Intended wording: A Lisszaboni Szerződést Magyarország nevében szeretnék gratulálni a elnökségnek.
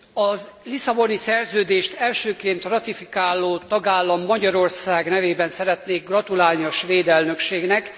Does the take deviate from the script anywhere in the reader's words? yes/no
yes